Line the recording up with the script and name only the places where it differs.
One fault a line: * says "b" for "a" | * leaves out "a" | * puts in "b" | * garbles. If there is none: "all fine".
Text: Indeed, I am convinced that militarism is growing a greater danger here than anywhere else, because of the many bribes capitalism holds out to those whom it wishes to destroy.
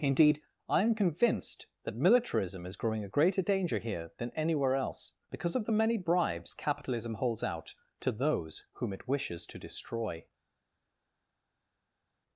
all fine